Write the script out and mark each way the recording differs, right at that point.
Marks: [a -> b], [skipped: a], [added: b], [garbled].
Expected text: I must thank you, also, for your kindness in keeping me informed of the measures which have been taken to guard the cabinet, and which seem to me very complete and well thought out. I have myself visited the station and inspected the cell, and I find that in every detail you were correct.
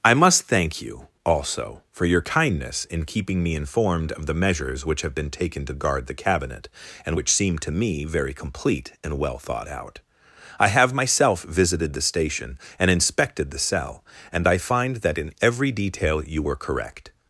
I must thank you, also, for your kindness in keeping me informed of the measures which have been taken to guard the cabinet, and which seem to me very complete and well thought out. I have myself visited the station and inspected the cell, and I find that in every detail you were correct.